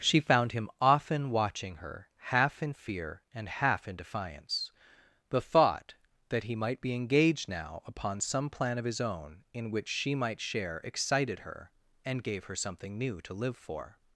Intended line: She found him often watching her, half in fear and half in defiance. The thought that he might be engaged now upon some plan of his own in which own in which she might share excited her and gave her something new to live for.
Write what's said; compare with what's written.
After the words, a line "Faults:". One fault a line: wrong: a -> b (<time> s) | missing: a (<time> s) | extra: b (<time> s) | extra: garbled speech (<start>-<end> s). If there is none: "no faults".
She found him often watching her, half in fear and half in defiance. The thought that he might be engaged now upon some plan of his own in which she might share excited her and gave her something new to live for.
Faults:
missing: own in which (9.9 s)